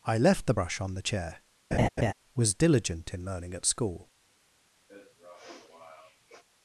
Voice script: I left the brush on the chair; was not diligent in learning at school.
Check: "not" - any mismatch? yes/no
yes